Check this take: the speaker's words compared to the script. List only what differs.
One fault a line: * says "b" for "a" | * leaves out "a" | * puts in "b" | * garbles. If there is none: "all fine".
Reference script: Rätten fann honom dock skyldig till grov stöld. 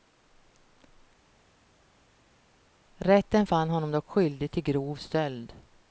all fine